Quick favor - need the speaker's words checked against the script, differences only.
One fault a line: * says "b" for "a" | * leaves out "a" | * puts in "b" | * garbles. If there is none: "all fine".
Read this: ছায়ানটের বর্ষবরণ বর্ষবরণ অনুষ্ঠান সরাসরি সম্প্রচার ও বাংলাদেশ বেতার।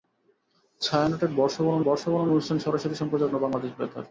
all fine